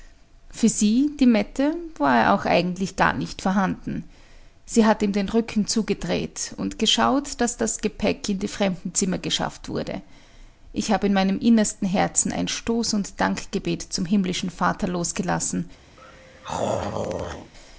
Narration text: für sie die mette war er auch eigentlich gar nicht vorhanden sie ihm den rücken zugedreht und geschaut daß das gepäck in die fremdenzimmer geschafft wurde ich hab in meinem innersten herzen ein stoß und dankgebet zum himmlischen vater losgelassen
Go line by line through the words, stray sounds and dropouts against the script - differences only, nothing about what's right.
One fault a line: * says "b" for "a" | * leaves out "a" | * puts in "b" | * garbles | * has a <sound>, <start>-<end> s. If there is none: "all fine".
* puts in "hat"
* has a throat clearing, 16.0-17.5 s